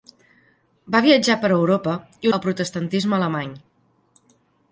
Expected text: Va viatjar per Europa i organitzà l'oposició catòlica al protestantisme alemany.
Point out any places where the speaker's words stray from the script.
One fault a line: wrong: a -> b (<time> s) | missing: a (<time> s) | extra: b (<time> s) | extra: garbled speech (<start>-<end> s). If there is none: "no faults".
missing: organitzà l'oposició catòlica (2.3 s)